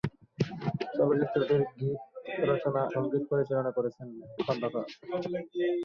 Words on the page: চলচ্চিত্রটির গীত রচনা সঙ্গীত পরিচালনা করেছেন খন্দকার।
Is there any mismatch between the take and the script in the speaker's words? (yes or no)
no